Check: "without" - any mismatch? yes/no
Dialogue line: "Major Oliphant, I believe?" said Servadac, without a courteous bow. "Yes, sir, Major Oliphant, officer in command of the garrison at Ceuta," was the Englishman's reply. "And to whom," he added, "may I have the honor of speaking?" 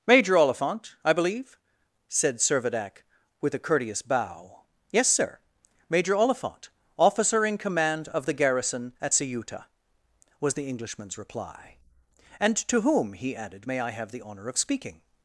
yes